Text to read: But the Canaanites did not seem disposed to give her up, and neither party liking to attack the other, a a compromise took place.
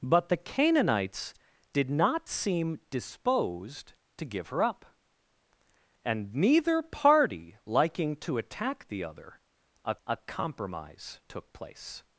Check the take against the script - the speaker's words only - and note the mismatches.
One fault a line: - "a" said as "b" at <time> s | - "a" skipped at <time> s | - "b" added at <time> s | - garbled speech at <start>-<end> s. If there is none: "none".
none